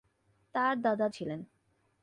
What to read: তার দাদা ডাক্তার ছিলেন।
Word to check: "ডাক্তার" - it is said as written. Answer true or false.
false